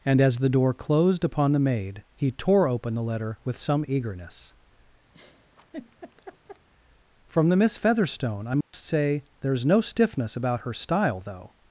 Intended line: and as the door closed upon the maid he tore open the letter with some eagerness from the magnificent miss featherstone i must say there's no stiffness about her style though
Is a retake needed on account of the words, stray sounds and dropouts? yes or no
yes